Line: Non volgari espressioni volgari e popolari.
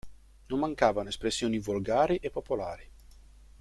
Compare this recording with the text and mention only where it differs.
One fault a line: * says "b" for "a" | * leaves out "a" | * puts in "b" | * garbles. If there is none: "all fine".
* says "mancavano" for "volgari"